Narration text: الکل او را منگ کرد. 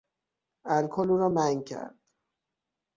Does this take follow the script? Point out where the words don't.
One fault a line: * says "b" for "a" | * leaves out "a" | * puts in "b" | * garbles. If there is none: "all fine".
all fine